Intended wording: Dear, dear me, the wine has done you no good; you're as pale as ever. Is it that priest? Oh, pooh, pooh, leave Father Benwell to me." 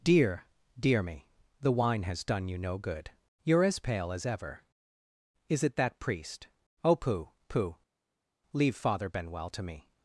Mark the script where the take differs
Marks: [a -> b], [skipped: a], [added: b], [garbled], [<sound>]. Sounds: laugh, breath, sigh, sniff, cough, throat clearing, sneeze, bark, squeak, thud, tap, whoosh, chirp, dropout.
Dear, dear me, the wine has done you no good; you're as pale as ever. Is it that priest? Oh, pooh, pooh, leave Father Benwell to me."